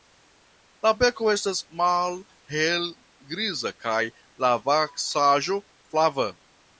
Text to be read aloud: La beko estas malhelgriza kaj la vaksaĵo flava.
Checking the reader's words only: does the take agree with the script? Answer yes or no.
yes